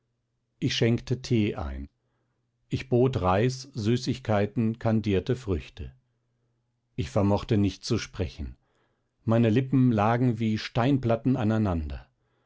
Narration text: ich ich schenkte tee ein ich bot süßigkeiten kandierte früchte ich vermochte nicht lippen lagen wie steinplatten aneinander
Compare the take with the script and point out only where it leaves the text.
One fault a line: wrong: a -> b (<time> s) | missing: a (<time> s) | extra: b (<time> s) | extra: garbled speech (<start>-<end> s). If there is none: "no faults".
missing: ich (0.8 s)
extra: reis (3.2 s)
extra: zu sprechen meine (7.8 s)